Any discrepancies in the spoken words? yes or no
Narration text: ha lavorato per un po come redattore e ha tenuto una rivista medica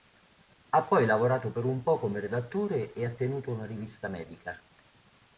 yes